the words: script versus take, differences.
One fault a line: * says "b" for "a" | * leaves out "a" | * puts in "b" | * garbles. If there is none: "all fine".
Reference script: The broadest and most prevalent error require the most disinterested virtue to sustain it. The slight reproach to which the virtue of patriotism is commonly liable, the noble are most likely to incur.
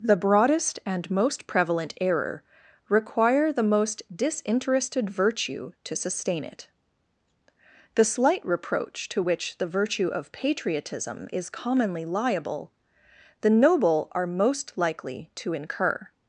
all fine